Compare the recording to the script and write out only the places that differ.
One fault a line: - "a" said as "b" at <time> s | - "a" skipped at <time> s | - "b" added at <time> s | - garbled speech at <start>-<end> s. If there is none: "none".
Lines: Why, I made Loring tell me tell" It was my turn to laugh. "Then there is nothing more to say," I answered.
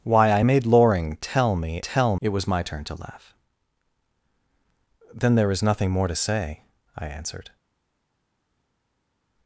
none